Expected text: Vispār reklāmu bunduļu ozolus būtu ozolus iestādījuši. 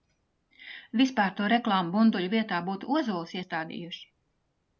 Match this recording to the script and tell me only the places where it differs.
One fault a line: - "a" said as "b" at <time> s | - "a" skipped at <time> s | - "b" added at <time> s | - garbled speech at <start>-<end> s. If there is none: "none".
- "to" added at 1.4 s
- "ozolus" said as "vietā" at 2.3 s